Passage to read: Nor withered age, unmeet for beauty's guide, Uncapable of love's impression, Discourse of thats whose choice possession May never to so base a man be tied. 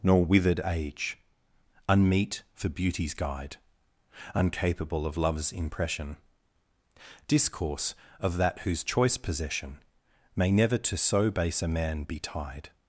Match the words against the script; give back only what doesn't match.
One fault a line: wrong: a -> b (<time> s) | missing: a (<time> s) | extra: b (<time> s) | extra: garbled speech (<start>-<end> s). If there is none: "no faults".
wrong: thats -> that (8.4 s)